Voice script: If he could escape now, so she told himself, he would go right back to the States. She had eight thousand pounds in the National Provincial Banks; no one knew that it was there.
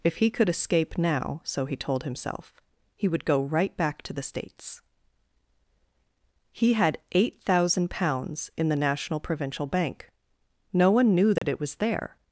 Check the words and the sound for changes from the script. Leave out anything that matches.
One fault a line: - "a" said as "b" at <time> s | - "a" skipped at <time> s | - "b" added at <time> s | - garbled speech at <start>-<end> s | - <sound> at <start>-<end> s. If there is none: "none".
- "she" said as "he" at 1.6 s
- "She" said as "He" at 6.5 s
- "Banks" said as "Bank" at 9.7 s
- dropout at 11.4-11.4 s